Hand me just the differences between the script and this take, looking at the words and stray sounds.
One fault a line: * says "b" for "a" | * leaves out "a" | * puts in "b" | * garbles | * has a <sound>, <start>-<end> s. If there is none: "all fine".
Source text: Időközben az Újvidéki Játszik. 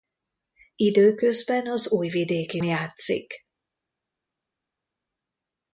all fine